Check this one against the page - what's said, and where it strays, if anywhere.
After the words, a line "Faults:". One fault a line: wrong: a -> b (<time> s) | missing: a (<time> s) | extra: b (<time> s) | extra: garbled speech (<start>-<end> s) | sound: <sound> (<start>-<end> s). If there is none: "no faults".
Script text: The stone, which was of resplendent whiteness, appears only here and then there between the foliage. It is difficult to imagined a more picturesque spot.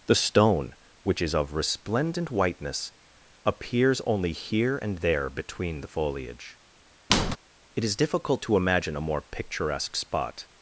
The stone, which is of resplendent whiteness, appears only here and there between the foliage. It is difficult to imagine a more picturesque spot.
Faults:
wrong: was -> is (1.2 s)
missing: then (5.0 s)
sound: squeak (7.1-7.4 s)
wrong: imagined -> imagine (8.6 s)